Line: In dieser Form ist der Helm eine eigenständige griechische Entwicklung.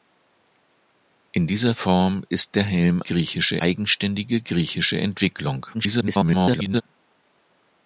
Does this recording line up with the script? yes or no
no